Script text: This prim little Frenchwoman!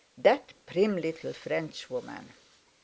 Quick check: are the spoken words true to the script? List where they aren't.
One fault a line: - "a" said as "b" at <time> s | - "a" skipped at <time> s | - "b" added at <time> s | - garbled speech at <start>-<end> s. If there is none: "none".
- "This" said as "That" at 0.2 s